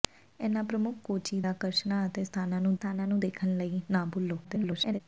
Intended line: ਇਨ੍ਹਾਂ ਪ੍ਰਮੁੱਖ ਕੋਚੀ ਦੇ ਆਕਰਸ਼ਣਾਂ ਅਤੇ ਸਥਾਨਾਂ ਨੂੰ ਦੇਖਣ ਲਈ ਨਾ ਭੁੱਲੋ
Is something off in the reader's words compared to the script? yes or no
yes